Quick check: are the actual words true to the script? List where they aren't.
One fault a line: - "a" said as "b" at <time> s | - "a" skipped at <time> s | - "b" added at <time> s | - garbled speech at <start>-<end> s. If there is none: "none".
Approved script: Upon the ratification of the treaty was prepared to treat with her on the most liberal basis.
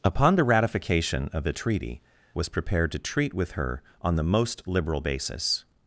none